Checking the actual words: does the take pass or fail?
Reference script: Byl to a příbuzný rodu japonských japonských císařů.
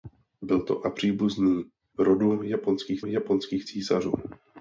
pass